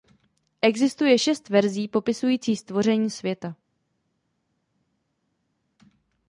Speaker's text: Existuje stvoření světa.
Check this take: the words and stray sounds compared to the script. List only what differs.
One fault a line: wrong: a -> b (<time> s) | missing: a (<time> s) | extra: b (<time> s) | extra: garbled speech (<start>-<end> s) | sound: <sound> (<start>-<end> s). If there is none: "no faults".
extra: šest verzí popisující (1.2 s)